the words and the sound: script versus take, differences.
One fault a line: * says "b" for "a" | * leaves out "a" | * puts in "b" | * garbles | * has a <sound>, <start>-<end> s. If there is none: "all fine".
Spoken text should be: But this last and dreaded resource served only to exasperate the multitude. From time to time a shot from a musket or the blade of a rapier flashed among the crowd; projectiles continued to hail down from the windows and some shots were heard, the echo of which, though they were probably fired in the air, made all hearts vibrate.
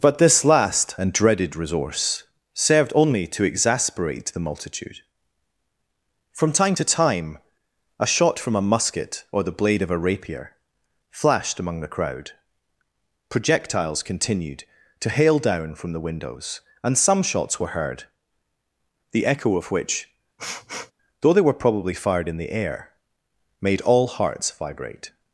* has a sniff, 20.4-20.9 s